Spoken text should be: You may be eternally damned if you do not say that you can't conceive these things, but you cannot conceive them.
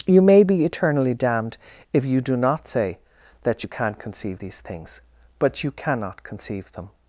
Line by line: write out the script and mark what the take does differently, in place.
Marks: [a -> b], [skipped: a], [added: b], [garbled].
You may be eternally damned if you do not say that you can't conceive these things, but you cannot conceive them.